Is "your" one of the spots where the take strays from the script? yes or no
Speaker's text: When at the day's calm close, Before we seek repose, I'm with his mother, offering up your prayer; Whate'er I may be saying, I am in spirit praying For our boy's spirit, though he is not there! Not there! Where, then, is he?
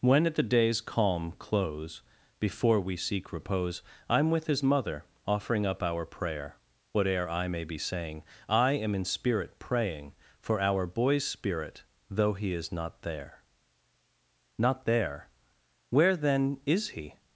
yes